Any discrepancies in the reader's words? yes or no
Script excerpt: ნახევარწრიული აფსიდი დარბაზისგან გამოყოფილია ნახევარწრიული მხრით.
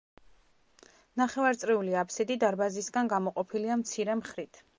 yes